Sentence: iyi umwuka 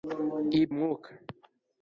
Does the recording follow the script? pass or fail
pass